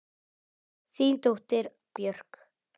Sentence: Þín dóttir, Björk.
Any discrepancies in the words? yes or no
no